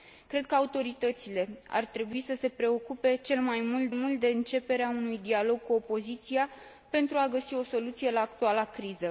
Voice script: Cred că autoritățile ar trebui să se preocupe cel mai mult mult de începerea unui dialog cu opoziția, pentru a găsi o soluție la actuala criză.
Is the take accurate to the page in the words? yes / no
yes